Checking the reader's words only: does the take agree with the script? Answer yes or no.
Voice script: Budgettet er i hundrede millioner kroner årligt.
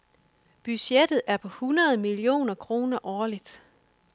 no